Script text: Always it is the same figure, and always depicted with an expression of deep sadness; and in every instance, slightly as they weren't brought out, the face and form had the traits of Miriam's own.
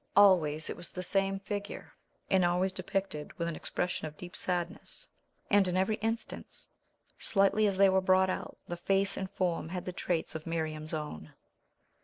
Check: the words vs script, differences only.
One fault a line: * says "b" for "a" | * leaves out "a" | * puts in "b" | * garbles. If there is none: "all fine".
* says "was" for "is"
* says "were" for "weren't"